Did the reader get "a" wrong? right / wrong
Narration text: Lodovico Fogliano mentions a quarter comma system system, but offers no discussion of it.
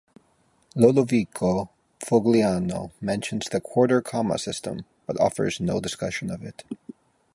wrong